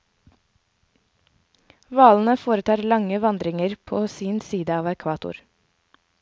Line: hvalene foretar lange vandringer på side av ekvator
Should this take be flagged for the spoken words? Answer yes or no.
yes